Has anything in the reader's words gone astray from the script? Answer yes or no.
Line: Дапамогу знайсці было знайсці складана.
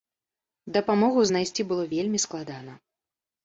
yes